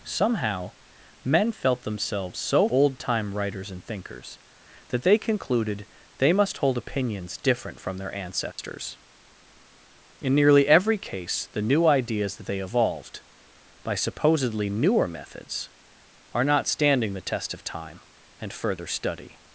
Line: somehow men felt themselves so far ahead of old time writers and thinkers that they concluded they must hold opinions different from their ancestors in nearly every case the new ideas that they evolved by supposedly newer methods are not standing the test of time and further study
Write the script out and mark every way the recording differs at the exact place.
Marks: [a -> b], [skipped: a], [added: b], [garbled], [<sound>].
somehow men felt themselves so [skipped: far ahead of] old time writers and thinkers that they concluded they must hold opinions different from their ancestors [dropout] in nearly every case the new ideas that they evolved by supposedly newer methods are not standing the test of time and further study